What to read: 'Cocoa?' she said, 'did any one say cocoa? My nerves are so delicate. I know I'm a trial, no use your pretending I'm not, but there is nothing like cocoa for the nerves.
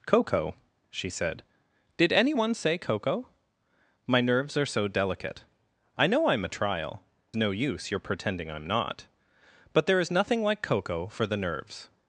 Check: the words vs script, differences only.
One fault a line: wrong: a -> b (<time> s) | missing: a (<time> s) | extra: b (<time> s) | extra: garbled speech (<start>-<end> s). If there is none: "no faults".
no faults